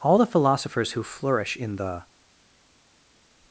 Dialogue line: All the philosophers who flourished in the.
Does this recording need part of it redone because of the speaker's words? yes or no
yes